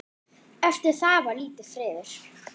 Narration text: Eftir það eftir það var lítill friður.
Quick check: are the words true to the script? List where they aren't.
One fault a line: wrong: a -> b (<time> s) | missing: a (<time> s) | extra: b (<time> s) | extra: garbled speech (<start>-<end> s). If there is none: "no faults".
missing: eftir það (1.2 s)